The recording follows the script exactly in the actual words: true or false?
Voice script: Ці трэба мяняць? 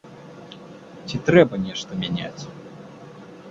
false